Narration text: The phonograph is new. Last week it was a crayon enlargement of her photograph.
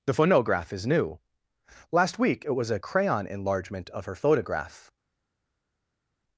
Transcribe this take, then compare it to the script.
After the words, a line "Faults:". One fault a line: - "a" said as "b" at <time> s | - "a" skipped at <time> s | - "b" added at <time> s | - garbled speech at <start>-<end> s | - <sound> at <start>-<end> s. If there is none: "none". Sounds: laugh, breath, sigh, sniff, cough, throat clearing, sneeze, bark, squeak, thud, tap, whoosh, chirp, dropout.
The phonograph is new. Last week it was a crayon enlargement of her photograph.
Faults:
none